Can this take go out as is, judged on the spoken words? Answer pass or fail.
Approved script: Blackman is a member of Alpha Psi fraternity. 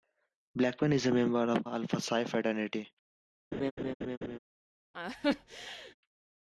pass